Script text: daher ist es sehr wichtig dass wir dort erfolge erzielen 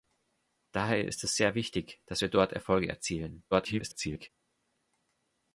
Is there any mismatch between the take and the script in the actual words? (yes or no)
yes